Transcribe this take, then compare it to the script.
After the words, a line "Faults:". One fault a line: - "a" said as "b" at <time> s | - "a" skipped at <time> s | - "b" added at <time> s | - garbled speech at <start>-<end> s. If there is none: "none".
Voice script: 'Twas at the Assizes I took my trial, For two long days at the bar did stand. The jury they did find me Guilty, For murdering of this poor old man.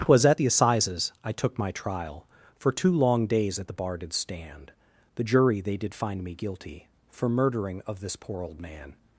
'Twas at the Assizes I took my trial, For two long days at the bar did stand. The jury they did find me Guilty, For murdering of this poor old man.
Faults:
none